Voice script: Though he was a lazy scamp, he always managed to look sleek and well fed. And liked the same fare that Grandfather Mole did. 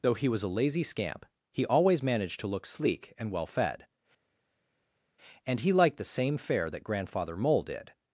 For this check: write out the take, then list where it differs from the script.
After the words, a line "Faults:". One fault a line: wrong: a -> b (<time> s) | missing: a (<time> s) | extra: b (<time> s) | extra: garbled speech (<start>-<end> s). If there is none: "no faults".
Though he was a lazy scamp, he always managed to look sleek and well fed. And he liked the same fare that Grandfather Mole did.
Faults:
extra: he (5.6 s)